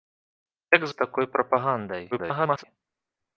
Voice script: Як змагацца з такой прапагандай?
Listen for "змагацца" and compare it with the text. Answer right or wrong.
wrong